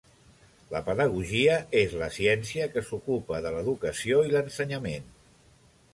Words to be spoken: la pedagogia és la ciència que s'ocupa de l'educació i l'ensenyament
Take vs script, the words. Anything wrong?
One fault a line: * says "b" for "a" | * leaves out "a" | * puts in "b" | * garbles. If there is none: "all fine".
all fine